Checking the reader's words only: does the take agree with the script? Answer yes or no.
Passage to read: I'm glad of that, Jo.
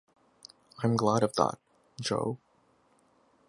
yes